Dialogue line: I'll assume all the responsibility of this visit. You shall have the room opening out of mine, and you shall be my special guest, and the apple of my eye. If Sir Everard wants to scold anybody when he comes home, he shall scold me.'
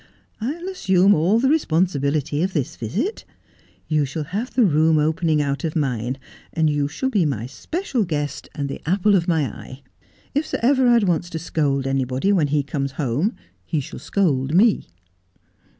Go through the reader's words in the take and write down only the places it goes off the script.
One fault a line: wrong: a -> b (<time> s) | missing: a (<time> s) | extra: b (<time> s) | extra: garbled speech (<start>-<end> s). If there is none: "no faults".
no faults